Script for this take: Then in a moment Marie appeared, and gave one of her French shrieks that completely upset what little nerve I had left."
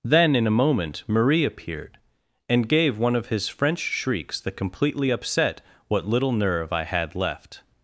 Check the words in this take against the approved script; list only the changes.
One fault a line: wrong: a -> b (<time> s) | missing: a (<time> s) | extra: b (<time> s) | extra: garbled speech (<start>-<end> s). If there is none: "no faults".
wrong: her -> his (3.3 s)